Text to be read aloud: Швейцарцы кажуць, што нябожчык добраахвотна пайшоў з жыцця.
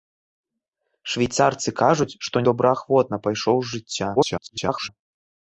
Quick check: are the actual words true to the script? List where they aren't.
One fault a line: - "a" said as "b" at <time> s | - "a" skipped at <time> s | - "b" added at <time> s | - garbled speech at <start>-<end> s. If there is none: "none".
- "нябожчык" skipped at 2.4 s
- garbled speech at 4.2-4.9 s